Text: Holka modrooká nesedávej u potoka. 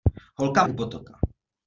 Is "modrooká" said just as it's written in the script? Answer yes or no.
no